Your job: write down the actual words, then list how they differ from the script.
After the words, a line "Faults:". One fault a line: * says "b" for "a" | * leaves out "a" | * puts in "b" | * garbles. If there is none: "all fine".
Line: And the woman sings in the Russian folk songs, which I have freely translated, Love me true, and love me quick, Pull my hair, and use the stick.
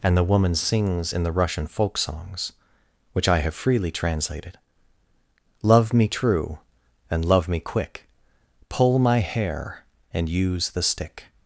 And the woman sings in the Russian folk songs, which I have freely translated, Love me true, and love me quick, Pull my hair, and use the stick.
Faults:
all fine